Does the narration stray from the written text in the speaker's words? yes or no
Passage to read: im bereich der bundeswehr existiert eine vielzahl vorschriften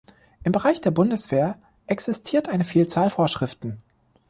no